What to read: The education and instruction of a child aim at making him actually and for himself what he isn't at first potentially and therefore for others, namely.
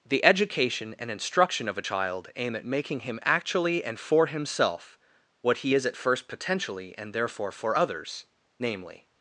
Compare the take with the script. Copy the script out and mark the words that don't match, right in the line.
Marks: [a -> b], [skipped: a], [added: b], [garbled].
The education and instruction of a child aim at making him actually and for himself what he [isn't -> is] at first potentially and therefore for others, namely.